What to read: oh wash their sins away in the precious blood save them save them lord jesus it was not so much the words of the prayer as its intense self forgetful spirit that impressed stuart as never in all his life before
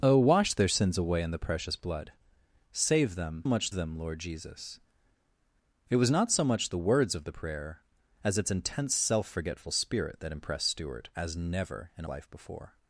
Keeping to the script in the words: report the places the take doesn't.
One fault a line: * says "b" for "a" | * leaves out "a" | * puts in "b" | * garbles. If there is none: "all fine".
* says "much" for "save"
* leaves out "all his"